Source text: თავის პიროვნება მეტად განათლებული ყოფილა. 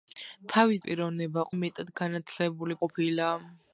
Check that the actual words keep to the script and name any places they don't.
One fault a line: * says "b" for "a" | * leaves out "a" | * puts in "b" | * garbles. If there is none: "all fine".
all fine